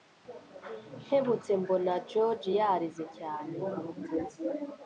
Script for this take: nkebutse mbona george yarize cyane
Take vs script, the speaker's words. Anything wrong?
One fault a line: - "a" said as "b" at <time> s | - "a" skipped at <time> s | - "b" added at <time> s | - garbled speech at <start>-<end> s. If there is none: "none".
none